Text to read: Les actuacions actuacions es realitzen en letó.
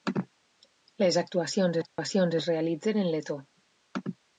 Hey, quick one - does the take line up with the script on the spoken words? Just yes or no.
yes